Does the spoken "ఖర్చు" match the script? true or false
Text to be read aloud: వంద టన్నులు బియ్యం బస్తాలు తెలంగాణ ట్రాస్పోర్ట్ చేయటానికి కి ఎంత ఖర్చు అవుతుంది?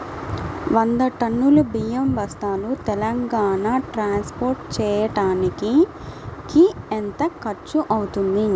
true